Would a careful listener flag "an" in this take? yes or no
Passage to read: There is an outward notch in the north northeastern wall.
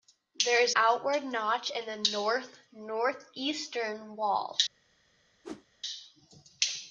yes